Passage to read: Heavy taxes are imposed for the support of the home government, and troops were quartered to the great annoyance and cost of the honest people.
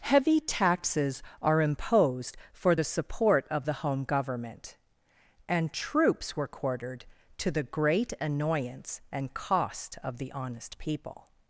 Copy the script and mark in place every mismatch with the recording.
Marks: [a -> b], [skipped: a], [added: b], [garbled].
Heavy taxes are imposed for the support of the home government, and troops were quartered to the great annoyance and cost of the honest people.